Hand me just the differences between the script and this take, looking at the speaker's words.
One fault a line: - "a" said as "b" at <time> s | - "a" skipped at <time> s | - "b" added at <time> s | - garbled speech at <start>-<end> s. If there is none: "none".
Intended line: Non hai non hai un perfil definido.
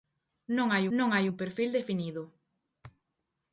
none